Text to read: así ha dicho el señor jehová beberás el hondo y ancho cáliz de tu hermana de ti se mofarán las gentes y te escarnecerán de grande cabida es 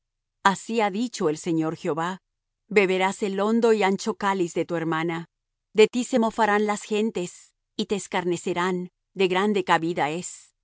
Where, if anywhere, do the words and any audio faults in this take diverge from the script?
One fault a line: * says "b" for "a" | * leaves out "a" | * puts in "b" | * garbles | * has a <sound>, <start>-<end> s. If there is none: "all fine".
all fine